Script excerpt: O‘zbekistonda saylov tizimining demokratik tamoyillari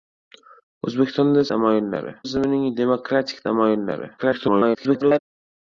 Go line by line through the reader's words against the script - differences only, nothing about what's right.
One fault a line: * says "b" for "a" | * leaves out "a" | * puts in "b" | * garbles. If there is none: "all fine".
* says "tamoyillari" for "saylov"
* garbles